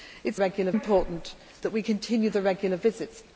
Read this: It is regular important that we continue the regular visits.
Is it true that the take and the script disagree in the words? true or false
false